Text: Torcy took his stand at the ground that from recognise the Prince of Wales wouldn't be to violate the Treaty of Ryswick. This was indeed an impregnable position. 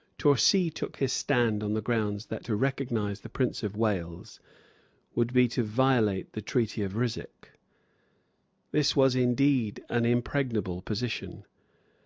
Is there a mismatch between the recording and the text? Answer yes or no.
yes